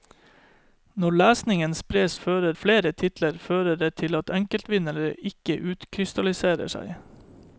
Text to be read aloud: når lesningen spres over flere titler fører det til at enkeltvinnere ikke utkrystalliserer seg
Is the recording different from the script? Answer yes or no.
yes